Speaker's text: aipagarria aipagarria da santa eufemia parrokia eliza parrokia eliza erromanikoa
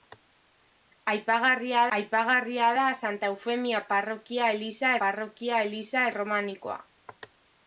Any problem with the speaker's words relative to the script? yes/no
no